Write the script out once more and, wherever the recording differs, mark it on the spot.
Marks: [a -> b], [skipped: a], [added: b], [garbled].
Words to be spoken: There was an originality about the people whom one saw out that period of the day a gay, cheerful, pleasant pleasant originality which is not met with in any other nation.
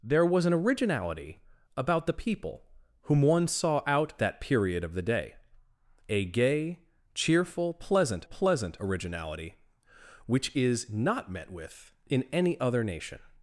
There was an originality about the people whom one saw out that period of the day a gay, cheerful, pleasant pleasant originality which is not met with in any other nation.